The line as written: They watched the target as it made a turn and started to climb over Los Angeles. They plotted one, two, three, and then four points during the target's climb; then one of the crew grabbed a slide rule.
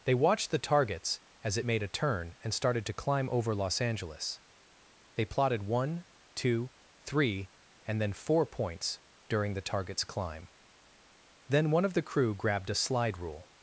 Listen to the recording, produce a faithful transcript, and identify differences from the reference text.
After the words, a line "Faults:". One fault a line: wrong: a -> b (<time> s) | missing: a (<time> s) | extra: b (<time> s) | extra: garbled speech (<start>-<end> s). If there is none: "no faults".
They watched the targets as it made a turn and started to climb over Los Angeles. They plotted one, two, three, and then four points during the target's climb; then one of the crew grabbed a slide rule.
Faults:
wrong: target -> targets (0.6 s)